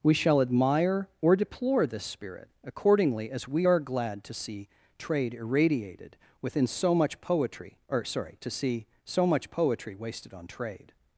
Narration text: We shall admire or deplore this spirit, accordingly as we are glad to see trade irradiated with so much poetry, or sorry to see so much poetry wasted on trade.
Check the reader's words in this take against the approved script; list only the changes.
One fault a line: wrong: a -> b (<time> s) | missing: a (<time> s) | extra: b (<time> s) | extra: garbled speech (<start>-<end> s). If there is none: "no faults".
wrong: with -> within (6.4 s)